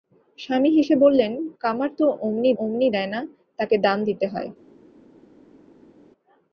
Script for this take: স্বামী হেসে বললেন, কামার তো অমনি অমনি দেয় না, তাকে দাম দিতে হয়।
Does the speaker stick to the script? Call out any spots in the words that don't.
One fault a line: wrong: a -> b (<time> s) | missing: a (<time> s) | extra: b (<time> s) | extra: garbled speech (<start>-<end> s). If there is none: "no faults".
no faults